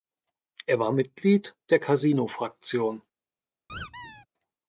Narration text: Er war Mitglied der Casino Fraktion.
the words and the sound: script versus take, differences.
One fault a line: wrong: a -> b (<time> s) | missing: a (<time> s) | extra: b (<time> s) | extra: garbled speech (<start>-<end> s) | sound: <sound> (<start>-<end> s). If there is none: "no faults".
sound: squeak (3.7-4.3 s)